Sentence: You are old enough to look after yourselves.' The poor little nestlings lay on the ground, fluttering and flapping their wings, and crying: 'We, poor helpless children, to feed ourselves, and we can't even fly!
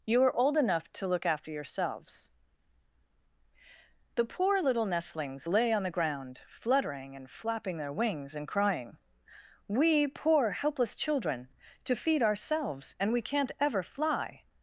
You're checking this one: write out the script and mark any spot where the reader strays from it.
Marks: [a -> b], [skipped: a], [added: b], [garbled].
You are old enough to look after yourselves.' The poor little nestlings lay on the ground, fluttering and flapping their wings, and crying: 'We, poor helpless children, to feed ourselves, and we can't [even -> ever] fly!